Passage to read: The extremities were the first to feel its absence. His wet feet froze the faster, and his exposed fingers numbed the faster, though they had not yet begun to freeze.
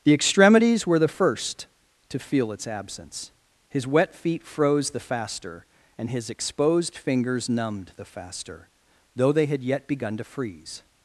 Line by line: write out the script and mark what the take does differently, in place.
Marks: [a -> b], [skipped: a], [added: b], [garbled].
The extremities were the first to feel its absence. His wet feet froze the faster, and his exposed fingers numbed the faster, though they had [skipped: not] yet begun to freeze.